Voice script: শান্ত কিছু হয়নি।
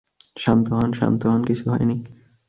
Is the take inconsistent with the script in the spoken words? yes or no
yes